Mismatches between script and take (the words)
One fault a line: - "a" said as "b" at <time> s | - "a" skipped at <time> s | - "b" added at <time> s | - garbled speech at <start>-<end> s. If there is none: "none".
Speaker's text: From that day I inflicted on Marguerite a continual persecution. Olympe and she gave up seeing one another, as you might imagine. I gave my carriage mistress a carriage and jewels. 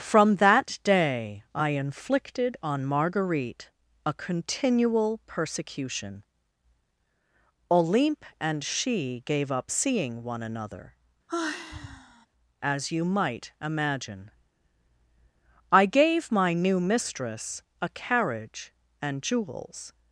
- "carriage" said as "new" at 16.5 s